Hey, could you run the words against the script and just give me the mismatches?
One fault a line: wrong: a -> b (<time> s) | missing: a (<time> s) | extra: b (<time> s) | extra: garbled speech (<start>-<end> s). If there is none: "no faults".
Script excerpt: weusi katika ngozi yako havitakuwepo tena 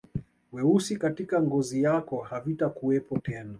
no faults